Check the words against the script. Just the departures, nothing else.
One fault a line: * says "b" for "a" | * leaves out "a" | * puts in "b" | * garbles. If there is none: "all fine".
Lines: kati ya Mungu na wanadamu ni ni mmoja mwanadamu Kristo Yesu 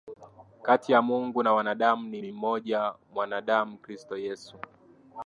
all fine